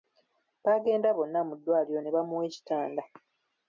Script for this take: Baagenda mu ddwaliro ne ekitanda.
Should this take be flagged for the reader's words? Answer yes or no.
yes